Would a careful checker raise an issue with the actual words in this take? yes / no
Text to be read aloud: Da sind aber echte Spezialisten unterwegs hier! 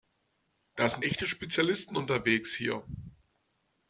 yes